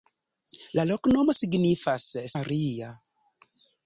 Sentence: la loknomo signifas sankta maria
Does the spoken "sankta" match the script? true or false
false